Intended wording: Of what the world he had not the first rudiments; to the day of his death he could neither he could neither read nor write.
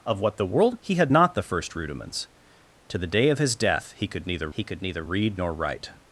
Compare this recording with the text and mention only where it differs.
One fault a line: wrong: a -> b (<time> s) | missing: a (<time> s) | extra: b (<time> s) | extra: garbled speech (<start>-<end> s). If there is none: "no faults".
no faults